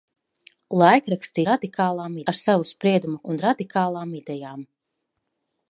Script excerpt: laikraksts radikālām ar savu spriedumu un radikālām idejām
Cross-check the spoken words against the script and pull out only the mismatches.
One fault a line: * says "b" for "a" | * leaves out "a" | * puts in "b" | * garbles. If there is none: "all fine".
all fine